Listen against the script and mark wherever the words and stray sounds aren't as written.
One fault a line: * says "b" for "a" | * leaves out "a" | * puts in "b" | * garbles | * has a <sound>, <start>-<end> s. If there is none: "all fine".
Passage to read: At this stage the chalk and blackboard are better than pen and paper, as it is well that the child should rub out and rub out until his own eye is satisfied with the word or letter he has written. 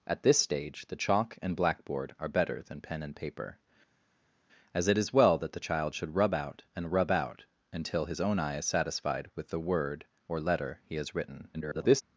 * garbles